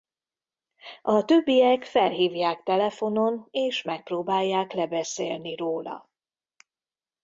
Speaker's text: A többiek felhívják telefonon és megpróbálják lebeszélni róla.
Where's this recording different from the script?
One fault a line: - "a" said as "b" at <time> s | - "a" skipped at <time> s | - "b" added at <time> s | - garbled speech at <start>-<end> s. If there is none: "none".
none